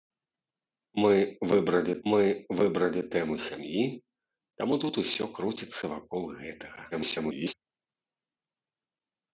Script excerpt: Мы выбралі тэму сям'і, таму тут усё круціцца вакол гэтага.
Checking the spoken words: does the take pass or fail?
fail